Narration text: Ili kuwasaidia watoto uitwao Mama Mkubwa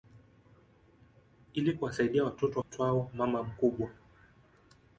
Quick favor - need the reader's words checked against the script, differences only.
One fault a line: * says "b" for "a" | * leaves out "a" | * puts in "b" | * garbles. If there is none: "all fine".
all fine